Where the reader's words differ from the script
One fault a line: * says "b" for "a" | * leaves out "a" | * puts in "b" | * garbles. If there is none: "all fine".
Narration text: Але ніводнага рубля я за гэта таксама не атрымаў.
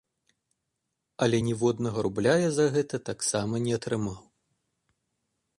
all fine